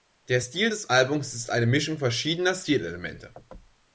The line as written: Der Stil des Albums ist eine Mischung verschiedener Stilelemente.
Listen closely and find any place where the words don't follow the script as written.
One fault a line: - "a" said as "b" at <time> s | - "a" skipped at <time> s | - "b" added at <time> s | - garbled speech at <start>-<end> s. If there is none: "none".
none